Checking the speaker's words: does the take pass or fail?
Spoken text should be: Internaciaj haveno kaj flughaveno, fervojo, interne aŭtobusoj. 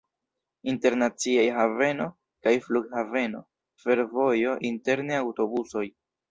pass